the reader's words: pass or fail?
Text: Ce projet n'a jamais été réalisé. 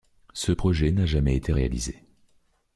pass